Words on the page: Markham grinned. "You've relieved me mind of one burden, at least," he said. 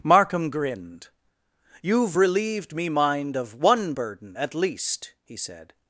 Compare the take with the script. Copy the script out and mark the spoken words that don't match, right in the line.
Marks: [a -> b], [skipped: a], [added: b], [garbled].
Markham grinned. "You've relieved me mind of one burden, at least," he said.